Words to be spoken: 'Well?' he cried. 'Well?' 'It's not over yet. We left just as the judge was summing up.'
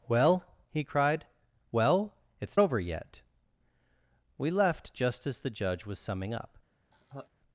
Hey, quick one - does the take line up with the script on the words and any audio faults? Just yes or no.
no